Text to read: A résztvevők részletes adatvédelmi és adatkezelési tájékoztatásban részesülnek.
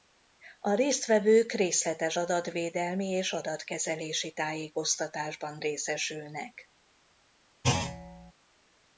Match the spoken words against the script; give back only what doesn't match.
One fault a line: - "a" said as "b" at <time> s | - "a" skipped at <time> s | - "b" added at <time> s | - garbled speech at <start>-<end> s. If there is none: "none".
none